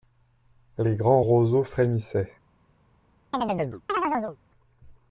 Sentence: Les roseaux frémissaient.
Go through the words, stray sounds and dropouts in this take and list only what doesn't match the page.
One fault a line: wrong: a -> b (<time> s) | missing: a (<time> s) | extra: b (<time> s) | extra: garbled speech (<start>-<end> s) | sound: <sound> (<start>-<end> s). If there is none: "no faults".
extra: grands (0.9 s)
sound: chirp (3.3-4.4 s)